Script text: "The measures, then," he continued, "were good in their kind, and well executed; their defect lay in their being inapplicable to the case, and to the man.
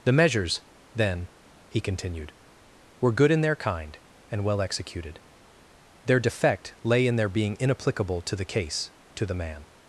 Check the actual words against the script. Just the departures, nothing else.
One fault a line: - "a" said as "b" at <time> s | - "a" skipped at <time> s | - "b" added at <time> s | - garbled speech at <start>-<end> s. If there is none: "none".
- "and" skipped at 8.9 s